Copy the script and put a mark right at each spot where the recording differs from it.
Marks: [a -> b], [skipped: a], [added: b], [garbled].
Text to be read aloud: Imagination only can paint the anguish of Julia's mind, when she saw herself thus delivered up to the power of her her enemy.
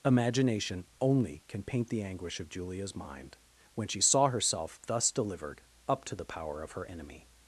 Imagination only can paint the anguish of Julia's mind, when she saw herself thus delivered up to the power of her [skipped: her] enemy.